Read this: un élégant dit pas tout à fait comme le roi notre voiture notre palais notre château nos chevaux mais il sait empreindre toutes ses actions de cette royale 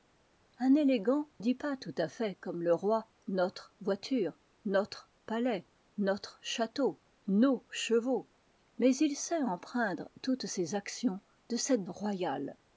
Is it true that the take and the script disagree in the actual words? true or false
false